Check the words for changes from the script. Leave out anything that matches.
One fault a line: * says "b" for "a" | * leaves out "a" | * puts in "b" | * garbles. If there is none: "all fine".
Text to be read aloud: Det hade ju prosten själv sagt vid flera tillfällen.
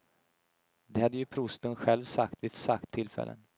* says "sagt" for "flera"